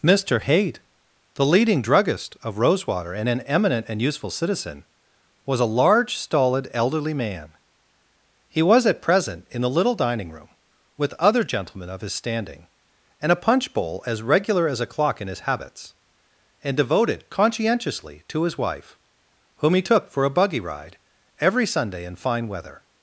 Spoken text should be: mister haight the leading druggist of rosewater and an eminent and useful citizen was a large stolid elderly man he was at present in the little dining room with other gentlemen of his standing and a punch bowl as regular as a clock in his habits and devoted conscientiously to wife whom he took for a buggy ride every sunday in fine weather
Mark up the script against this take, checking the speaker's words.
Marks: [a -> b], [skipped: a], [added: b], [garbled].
mister haight the leading druggist of rosewater and an eminent and useful citizen was a large stolid elderly man he was at present in the little dining room with other gentlemen of his standing and a punch bowl as regular as a clock in his habits and devoted conscientiously to [added: his] wife whom he took for a buggy ride every sunday in fine weather